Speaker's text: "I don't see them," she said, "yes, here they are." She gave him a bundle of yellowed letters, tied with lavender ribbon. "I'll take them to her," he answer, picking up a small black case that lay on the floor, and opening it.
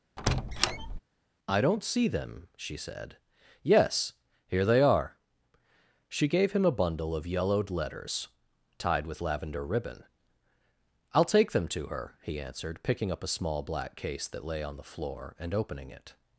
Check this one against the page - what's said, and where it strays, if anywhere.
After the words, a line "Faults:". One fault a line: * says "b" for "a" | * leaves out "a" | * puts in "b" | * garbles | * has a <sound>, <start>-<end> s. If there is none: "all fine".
"I don't see them," she said, "yes, here they are." She gave him a bundle of yellowed letters, tied with lavender ribbon. "I'll take them to her," he answered, picking up a small black case that lay on the floor, and opening it.
Faults:
* has a squeak, 0.2-1.0 s
* says "answered" for "answer"